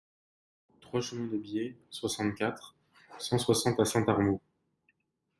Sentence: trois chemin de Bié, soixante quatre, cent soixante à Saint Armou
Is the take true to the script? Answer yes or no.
yes